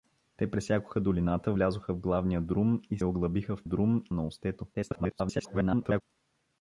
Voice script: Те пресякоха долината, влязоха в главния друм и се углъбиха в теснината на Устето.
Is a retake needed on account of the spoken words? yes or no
yes